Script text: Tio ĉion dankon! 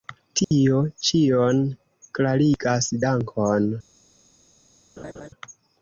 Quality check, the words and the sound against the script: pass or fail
fail